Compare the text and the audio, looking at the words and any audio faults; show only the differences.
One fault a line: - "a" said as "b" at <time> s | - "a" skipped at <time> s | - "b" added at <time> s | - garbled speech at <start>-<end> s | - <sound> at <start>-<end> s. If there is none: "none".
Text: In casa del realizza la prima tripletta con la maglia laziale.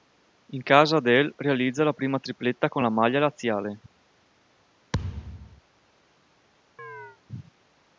- thud at 4.9-5.6 s
- chirp at 6.8-7.2 s